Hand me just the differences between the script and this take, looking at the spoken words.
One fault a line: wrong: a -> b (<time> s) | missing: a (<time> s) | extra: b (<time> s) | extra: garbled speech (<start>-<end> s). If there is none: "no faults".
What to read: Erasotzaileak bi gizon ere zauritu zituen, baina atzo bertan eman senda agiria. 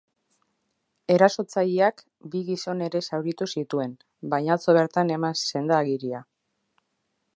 no faults